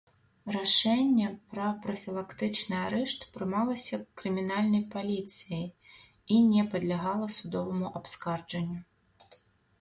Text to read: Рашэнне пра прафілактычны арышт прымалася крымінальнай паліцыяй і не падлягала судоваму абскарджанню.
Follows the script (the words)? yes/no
yes